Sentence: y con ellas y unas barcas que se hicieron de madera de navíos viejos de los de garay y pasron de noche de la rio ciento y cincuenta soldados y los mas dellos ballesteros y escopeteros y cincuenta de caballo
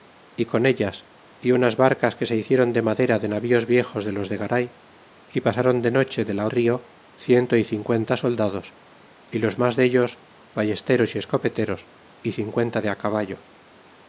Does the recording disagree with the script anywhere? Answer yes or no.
no